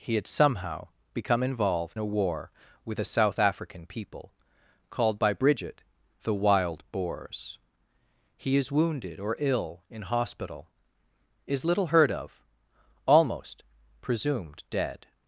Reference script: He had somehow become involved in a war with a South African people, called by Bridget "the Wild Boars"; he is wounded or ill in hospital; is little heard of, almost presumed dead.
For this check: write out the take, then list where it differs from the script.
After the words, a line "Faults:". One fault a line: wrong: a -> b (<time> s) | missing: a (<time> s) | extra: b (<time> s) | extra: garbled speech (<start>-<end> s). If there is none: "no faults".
He had somehow become involved a war with a South African people, called by Bridget "the Wild Boars"; he is wounded or ill in hospital; is little heard of, almost presumed dead.
Faults:
missing: in (2.0 s)